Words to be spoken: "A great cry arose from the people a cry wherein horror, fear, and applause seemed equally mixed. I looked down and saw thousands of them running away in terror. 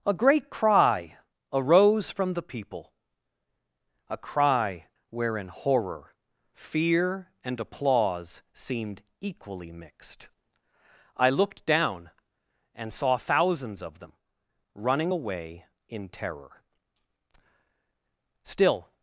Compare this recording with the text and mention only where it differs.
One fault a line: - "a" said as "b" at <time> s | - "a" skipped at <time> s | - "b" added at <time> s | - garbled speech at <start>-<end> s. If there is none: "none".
- "Still" added at 18.4 s